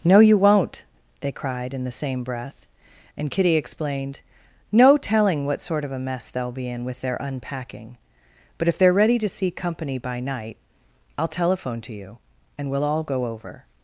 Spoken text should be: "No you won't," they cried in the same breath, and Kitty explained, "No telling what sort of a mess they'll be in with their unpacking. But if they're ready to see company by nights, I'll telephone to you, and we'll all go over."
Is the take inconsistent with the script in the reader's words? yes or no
yes